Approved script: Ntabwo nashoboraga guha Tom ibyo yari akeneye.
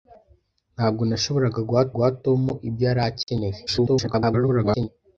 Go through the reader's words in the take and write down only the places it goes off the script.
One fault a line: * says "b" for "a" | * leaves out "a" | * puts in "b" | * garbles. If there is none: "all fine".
* puts in "guha"
* garbles